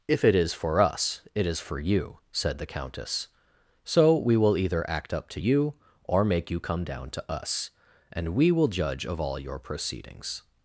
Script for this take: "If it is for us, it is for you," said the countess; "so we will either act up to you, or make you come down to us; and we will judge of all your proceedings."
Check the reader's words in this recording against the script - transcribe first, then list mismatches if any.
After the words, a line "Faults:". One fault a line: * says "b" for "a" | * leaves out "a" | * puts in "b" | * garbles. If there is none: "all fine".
"If it is for us, it is for you," said the countess; "so we will either act up to you, or make you come down to us; and we will judge of all your proceedings."
Faults:
all fine